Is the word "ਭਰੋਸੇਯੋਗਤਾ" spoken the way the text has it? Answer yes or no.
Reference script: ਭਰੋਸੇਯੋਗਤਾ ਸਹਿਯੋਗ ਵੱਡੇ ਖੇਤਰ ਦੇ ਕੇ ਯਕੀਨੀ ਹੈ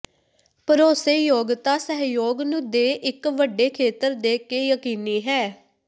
yes